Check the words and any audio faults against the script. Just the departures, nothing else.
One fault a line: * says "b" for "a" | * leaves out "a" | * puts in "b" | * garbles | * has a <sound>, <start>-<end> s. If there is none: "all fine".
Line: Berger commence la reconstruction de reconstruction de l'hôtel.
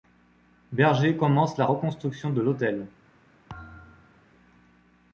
* leaves out "reconstruction de"
* has a thud, 3.5-4.3 s